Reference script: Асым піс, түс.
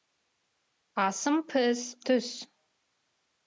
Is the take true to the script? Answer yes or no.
yes